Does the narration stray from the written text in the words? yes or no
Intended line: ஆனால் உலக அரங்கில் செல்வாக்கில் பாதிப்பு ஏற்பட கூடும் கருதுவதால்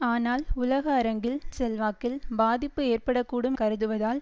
no